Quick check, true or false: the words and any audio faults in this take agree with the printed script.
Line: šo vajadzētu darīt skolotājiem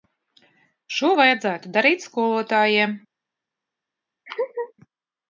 false